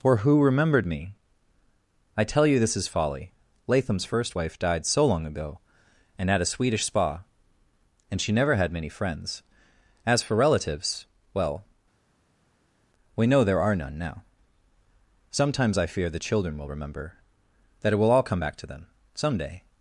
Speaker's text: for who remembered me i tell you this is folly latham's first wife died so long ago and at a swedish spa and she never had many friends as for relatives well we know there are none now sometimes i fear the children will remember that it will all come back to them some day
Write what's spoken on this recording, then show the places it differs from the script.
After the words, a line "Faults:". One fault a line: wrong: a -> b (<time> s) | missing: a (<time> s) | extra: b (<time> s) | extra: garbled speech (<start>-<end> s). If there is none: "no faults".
for who remembered me i tell you this is folly latham's first wife died so long ago and at a swedish spa and she never had many friends as for relatives well we know there are none now sometimes i fear the children will remember that it will all come back to them some day
Faults:
no faults